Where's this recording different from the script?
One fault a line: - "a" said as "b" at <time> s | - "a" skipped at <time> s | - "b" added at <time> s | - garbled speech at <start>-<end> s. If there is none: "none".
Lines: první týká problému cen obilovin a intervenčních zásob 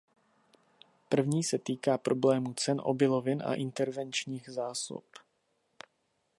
- "se" added at 1.4 s